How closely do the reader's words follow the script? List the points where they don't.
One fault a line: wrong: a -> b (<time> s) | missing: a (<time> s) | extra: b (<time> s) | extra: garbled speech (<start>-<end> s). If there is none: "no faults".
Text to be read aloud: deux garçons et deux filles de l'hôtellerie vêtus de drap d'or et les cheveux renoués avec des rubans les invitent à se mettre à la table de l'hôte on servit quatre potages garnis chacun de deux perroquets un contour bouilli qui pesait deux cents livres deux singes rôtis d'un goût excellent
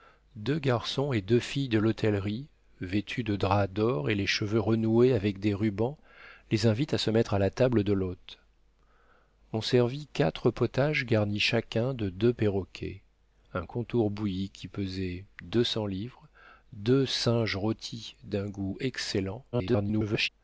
extra: garbled speech (19.5-20.3 s)